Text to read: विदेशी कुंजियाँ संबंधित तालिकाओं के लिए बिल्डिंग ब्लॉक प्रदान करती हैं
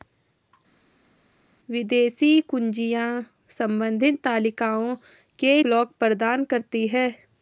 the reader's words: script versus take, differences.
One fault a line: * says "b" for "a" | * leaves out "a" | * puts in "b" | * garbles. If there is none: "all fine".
* leaves out "लिए बिल्डिंग"